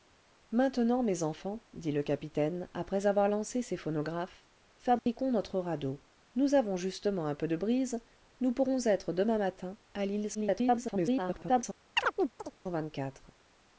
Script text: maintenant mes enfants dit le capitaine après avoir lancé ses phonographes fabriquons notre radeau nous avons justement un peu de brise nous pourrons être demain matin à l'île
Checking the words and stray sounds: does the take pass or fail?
fail